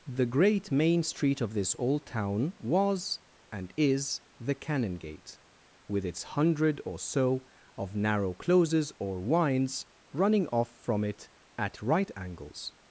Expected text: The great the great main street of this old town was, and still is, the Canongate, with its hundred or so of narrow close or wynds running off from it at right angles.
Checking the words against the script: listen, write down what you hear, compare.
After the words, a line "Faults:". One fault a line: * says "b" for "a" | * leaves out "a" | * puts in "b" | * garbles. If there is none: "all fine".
The great main street of this old town was, and is, the Canongate, with its hundred or so of narrow closes or wynds running off from it at right angles.
Faults:
* leaves out "the great"
* leaves out "still"
* says "closes" for "close"